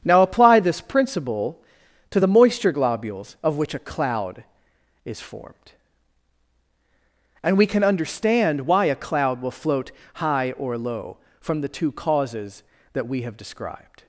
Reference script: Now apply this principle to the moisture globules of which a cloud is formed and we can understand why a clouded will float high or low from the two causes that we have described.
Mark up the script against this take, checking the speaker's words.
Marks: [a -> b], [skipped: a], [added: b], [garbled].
Now apply this principle to the moisture globules of which a cloud is formed and we can understand why a [clouded -> cloud] will float high or low from the two causes that we have described.